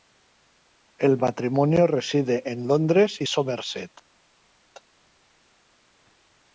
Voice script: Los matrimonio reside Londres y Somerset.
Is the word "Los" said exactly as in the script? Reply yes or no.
no